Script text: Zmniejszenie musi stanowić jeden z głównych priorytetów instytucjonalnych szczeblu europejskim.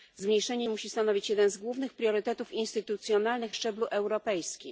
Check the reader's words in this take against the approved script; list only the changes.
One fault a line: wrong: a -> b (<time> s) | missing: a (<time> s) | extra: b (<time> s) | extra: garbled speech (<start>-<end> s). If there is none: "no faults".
no faults